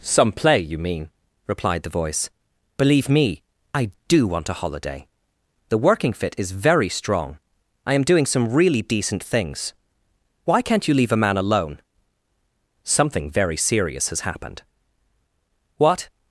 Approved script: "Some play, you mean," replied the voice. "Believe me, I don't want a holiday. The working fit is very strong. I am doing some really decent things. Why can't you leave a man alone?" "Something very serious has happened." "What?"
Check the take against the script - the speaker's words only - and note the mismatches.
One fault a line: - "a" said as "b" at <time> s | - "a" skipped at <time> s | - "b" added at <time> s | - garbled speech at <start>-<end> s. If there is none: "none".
- "don't" said as "do" at 4.1 s